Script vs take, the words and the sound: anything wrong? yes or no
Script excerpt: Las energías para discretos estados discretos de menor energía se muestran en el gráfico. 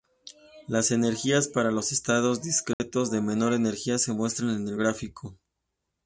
yes